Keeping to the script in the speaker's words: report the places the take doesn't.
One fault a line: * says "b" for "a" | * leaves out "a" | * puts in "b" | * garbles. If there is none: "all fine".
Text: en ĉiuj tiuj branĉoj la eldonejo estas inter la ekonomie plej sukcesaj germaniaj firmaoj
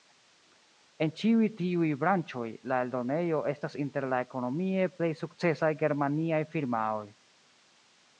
all fine